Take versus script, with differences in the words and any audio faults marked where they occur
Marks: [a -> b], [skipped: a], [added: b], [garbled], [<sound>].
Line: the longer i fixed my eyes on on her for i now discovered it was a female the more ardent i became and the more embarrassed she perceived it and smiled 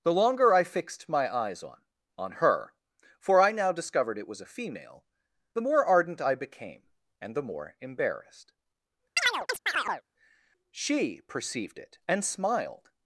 the longer i fixed my eyes on on her for i now discovered it was a female the more ardent i became and the more embarrassed [chirp] she perceived it and smiled